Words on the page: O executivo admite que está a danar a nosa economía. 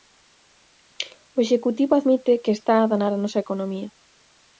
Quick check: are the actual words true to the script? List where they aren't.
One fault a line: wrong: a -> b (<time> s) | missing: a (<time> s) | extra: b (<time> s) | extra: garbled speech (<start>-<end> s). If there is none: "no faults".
no faults